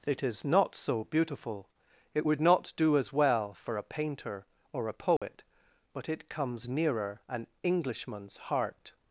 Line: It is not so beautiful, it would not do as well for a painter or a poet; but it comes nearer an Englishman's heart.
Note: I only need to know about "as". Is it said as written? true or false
true